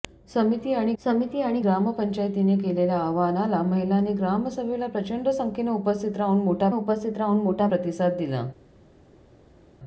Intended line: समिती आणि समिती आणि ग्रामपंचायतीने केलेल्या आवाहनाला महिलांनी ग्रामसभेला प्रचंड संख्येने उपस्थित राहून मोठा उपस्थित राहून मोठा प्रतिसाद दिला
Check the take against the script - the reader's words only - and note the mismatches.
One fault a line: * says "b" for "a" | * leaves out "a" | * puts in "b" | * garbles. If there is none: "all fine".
all fine